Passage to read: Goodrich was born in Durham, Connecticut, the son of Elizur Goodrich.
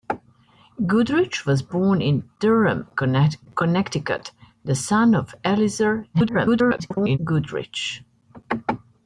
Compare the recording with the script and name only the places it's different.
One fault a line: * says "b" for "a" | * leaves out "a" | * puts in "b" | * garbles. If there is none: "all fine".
* garbles